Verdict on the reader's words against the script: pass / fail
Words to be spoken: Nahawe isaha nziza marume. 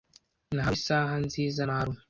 pass